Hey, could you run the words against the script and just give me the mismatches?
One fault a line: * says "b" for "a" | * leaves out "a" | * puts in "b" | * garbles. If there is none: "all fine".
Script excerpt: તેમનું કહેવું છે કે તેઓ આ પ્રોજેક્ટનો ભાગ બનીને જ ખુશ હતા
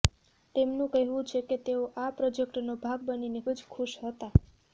all fine